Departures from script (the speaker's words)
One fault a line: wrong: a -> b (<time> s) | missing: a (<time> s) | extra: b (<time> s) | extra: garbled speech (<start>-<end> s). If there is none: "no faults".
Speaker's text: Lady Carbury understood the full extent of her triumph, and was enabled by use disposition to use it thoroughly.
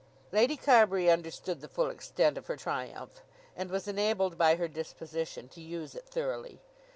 wrong: use -> her (4.6 s)